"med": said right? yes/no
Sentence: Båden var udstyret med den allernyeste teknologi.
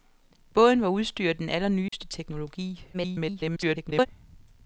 no